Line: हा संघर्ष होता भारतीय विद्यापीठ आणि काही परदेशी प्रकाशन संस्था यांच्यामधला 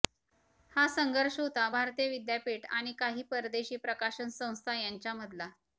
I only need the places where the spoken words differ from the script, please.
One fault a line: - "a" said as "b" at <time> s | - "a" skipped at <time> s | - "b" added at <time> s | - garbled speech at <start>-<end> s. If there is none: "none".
none